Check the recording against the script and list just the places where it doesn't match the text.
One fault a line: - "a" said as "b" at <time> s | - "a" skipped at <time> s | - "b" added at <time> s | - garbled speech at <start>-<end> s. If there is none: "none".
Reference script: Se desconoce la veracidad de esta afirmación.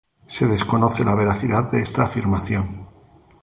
none